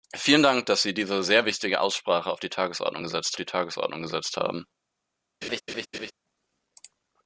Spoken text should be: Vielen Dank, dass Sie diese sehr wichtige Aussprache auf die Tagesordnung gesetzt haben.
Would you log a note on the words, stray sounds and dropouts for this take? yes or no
yes